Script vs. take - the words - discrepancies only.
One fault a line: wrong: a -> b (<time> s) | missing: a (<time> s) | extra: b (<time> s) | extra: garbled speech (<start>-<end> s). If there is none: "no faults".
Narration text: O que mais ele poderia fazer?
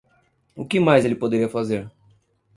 no faults